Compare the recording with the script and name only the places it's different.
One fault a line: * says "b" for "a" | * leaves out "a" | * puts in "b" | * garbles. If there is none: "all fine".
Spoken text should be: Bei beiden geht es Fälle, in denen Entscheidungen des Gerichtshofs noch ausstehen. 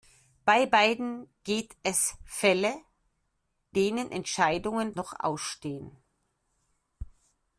* leaves out "in"
* leaves out "des Gerichtshofs"